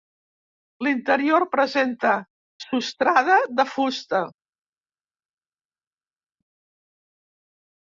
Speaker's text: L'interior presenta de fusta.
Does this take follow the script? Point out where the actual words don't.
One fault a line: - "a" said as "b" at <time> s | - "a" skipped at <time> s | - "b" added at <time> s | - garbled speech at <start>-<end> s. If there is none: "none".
- "sostrada" added at 2.7 s